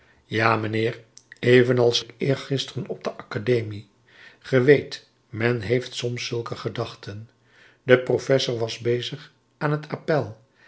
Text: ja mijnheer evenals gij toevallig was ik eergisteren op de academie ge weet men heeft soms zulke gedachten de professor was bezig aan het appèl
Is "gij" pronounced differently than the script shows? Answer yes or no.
yes